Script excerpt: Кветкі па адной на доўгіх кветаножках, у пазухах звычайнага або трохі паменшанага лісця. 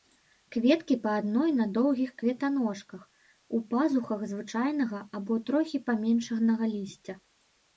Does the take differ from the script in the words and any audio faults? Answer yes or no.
no